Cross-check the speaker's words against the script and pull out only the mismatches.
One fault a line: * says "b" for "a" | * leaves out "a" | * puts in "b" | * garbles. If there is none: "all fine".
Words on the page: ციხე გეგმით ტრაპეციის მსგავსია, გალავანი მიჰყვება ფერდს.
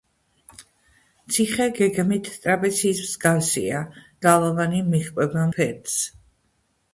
all fine